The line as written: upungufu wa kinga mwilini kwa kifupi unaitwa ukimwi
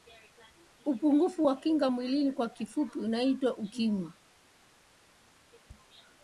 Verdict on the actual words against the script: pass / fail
pass